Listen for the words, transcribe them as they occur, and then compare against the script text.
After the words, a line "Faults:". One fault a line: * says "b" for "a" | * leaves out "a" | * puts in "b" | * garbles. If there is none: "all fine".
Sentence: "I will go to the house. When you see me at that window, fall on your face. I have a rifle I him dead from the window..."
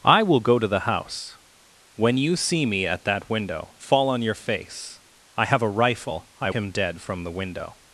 "I will go to the house. When you see me at that window, fall on your face. I have a rifle I him dead from the window..."
Faults:
all fine